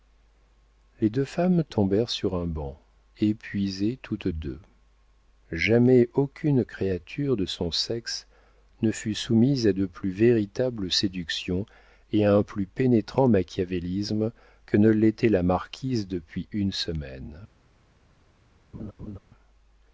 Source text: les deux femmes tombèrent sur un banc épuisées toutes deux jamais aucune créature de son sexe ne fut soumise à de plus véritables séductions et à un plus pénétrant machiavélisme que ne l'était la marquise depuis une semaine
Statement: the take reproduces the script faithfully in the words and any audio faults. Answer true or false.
false